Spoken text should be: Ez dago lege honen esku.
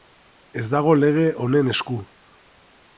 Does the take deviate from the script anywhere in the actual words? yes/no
no